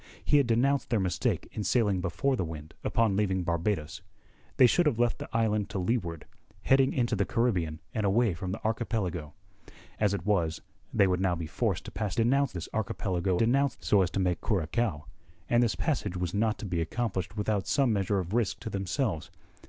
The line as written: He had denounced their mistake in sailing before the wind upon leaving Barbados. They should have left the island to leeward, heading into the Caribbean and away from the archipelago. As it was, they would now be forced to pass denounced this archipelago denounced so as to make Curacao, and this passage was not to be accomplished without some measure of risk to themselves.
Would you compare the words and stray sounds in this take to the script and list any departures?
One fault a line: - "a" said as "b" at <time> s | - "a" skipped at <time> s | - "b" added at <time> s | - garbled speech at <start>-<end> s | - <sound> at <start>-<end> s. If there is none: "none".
none